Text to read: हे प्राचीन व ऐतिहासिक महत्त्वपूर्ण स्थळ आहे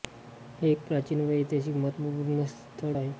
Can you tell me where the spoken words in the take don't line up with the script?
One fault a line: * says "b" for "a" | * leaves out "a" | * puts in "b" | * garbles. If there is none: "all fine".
* puts in "एक"